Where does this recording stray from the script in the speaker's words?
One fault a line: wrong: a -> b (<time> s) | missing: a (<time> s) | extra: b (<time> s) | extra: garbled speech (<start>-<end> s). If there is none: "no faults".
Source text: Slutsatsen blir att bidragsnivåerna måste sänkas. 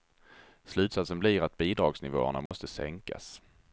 no faults